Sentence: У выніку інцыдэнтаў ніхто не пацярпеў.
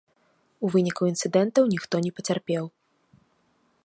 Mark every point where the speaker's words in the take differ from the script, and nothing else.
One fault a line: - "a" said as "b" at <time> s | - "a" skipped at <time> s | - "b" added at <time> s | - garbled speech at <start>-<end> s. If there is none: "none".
none